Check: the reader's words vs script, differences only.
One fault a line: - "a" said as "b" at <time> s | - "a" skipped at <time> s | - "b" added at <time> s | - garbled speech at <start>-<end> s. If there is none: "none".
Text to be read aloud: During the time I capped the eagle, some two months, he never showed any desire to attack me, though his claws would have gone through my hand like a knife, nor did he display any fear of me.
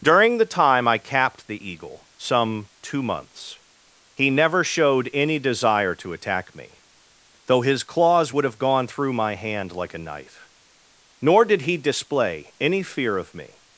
none